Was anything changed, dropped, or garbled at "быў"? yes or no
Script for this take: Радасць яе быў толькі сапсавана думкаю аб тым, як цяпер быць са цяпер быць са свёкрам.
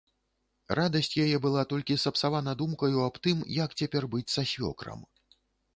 yes